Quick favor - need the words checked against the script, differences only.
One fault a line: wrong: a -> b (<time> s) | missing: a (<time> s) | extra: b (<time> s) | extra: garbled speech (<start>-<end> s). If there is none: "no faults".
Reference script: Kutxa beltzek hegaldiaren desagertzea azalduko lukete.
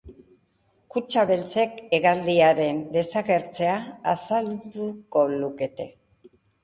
no faults